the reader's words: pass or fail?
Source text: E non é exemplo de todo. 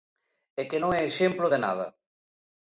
fail